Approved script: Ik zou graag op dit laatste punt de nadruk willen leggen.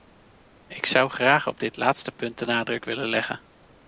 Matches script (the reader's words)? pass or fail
pass